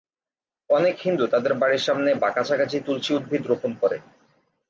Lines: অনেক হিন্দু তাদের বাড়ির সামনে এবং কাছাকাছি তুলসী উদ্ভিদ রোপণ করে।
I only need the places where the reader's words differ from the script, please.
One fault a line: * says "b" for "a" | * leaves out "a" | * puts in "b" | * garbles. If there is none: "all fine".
* says "বা" for "এবং"